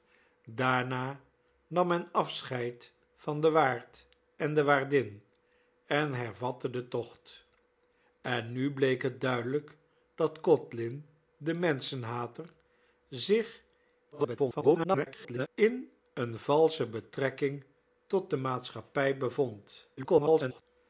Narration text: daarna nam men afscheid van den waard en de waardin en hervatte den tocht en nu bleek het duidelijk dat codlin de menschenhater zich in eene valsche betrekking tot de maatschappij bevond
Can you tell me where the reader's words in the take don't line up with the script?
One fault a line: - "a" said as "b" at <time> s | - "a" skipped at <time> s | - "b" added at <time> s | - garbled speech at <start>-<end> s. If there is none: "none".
- garbled speech at 14.1-15.5 s
- garbled speech at 20.0-20.6 s